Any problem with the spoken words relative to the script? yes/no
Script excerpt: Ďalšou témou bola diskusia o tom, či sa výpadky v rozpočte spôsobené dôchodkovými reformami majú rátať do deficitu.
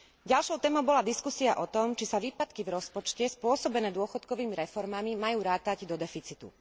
no